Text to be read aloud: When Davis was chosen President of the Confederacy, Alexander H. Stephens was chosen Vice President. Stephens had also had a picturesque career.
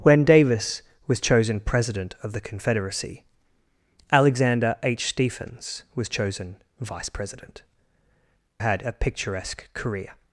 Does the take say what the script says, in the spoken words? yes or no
no